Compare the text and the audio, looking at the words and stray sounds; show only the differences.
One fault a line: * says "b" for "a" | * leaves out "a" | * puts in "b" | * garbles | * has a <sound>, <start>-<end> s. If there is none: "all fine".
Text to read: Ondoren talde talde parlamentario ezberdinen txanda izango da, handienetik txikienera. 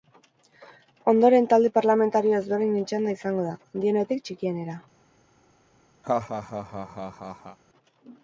* leaves out "talde"
* has a laugh, 6.0-7.6 s